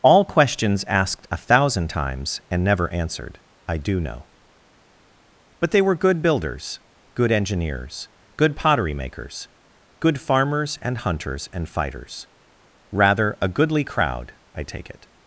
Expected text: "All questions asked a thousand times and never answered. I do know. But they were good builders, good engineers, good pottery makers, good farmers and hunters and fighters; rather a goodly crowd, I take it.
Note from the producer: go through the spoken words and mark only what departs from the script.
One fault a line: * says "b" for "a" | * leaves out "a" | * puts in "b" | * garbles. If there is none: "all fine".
all fine